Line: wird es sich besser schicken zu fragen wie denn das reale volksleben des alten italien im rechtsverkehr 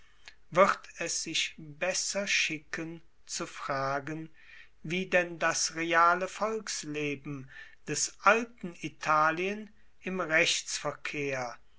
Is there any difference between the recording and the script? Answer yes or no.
no